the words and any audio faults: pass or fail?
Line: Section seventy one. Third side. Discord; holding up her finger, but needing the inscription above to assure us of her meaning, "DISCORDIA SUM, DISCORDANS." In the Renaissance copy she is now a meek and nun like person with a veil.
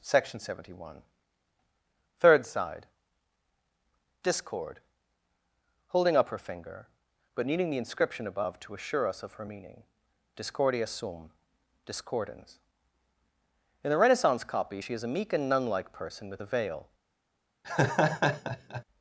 fail